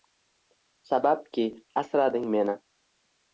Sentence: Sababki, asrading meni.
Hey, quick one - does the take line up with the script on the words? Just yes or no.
yes